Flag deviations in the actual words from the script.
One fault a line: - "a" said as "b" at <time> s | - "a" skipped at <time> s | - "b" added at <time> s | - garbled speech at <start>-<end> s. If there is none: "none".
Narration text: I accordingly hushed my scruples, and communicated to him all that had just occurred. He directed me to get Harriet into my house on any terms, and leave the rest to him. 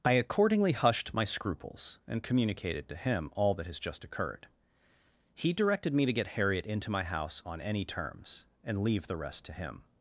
- "had" said as "has" at 3.7 s